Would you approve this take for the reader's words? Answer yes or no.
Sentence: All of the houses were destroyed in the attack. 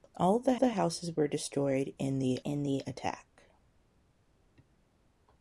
no